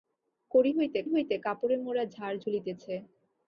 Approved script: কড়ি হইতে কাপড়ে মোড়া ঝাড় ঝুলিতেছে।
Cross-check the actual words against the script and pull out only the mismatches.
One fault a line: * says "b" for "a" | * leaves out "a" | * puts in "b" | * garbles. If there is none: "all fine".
* puts in "হইতে"